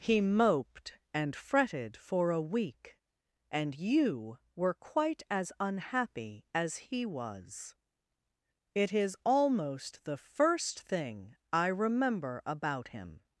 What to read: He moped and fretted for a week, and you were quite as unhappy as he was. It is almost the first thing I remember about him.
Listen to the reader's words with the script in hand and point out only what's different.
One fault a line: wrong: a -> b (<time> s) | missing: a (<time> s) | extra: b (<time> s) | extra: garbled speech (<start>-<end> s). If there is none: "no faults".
no faults